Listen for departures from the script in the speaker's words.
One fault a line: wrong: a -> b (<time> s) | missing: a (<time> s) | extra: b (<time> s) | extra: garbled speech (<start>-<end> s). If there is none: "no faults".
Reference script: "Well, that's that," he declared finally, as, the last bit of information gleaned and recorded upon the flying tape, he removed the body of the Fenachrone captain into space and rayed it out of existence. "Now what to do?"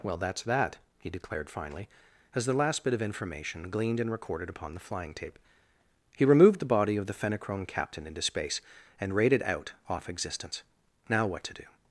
wrong: of -> off (9.9 s)